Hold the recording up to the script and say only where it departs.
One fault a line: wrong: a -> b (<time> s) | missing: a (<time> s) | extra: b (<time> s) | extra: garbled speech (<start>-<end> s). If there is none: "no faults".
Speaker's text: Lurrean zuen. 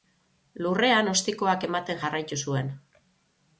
extra: ostikoak ematen jarraitu (1.1 s)